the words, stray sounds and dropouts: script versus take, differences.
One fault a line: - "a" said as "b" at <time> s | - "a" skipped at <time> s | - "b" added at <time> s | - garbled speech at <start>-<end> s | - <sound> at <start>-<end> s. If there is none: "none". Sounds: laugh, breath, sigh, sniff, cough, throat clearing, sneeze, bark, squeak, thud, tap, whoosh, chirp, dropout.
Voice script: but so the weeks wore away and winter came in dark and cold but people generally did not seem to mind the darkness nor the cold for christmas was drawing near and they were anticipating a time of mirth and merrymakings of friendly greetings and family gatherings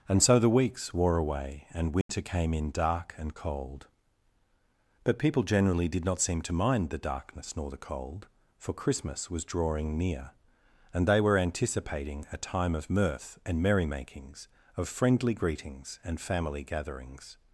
- "but" said as "and" at 0.1 s
- dropout at 2.0-2.1 s